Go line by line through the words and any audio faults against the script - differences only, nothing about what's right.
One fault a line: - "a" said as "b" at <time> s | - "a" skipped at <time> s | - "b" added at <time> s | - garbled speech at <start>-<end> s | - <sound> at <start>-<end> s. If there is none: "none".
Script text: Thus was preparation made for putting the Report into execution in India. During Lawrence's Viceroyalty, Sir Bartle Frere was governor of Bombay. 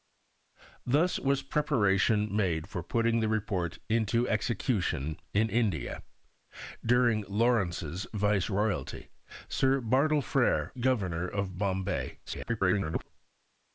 - "was" skipped at 10.7 s
- garbled speech at 12.3-13.1 s